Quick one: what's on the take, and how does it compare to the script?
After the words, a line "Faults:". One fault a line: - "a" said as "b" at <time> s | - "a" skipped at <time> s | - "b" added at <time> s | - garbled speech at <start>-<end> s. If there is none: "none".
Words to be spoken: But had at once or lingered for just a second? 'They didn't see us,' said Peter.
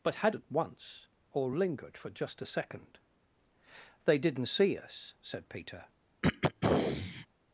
But had at once or lingered for just a second? 'They didn't see us,' said Peter.
Faults:
none